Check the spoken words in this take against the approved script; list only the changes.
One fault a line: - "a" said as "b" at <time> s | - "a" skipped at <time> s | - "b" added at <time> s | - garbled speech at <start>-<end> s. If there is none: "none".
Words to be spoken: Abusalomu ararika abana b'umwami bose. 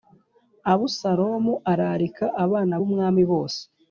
none